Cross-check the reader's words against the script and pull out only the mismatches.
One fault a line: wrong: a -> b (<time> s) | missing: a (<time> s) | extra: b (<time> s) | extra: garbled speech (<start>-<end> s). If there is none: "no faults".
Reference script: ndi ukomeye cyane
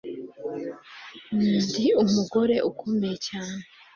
extra: umugore (2.0 s)